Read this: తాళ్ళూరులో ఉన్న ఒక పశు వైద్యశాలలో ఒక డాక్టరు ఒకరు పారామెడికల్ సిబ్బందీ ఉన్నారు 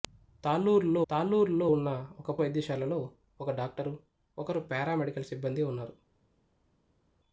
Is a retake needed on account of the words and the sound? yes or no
yes